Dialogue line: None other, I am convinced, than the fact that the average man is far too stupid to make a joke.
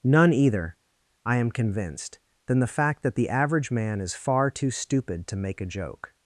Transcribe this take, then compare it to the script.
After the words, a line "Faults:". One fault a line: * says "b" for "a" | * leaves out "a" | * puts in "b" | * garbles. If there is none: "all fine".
None either, I am convinced, than the fact that the average man is far too stupid to make a joke.
Faults:
* says "either" for "other"